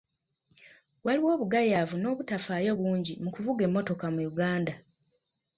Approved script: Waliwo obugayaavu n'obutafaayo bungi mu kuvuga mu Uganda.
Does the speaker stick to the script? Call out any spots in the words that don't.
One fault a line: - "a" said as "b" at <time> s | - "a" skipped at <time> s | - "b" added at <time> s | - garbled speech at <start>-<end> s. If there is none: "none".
- "emmotoka" added at 3.7 s